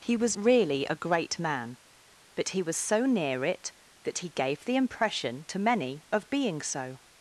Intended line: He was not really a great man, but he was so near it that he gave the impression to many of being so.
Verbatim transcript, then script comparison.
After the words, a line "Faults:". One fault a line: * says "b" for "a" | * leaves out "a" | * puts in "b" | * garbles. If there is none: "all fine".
He was really a great man, but he was so near it that he gave the impression to many of being so.
Faults:
* leaves out "not"